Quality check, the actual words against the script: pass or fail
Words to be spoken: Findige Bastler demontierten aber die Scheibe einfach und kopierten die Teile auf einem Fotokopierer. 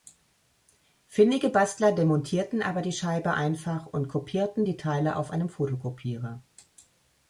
pass